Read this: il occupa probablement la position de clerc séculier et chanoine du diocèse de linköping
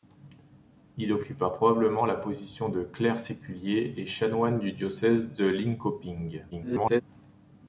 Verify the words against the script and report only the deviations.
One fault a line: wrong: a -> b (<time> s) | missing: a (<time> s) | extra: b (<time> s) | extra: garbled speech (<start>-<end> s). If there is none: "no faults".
extra: garbled speech (6.5-7.0 s)